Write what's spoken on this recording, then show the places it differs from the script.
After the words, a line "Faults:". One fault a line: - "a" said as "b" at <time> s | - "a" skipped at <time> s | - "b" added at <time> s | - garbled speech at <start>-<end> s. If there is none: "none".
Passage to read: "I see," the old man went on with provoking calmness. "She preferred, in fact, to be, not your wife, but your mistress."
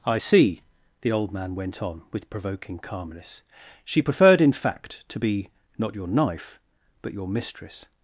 "I see," the old man went on with provoking calmness. "She preferred, in fact, to be, not your knife, but your mistress."
Faults:
- "wife" said as "knife" at 6.1 s